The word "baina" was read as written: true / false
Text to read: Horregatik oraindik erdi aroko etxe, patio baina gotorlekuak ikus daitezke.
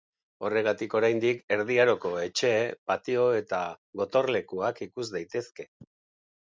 false